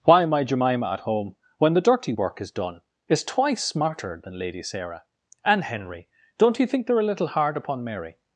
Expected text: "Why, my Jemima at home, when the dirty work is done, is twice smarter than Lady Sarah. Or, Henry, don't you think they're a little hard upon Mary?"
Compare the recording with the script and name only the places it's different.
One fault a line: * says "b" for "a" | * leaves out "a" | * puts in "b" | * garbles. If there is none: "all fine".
* says "And" for "Or"